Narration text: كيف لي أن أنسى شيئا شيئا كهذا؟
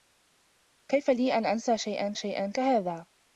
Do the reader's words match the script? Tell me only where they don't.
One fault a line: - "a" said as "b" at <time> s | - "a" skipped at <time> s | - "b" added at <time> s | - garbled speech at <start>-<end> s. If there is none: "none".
none